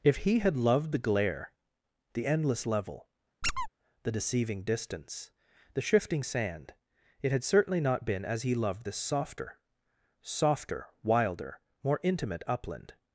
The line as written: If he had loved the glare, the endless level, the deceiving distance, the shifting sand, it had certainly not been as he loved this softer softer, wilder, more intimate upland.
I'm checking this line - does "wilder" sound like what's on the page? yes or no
yes